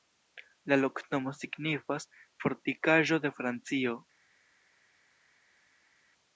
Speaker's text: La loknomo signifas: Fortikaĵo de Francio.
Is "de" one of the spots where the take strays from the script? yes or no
no